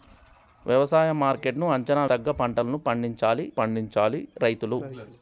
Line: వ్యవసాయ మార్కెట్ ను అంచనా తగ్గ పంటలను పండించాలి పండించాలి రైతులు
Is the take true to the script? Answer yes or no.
yes